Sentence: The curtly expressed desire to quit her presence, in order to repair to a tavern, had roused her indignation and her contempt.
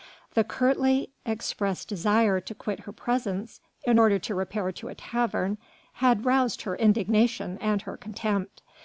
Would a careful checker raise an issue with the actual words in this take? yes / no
no